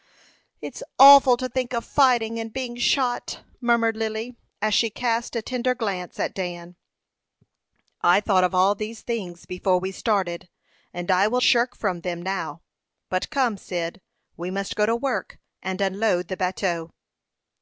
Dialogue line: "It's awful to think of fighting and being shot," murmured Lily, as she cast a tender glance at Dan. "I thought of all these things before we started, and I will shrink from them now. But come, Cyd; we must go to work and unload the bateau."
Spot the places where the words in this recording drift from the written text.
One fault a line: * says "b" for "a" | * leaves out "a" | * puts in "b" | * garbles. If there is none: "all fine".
all fine